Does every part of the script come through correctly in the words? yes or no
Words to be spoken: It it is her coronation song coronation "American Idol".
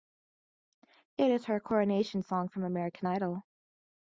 no